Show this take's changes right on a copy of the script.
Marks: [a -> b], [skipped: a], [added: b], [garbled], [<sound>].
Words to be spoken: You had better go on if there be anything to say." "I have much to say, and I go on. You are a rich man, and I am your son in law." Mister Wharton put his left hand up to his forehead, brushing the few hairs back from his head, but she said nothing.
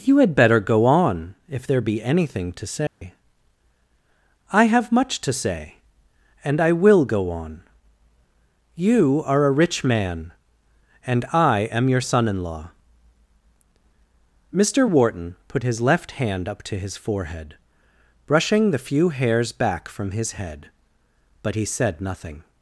You had better go on if there be anything to say." [dropout] "I have much to say, and I [added: will] go on. You are a rich man, and I am your son in law." Mister Wharton put his left hand up to his forehead, brushing the few hairs back from his head, but [she -> he] said nothing.